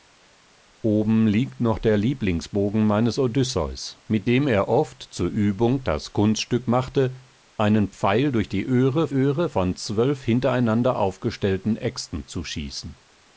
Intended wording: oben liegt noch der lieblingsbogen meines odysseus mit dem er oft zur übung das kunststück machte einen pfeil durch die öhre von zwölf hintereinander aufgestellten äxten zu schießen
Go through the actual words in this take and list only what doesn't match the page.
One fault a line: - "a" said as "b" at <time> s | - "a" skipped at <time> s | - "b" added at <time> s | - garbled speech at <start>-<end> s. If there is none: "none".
- "öhre" added at 9.1 s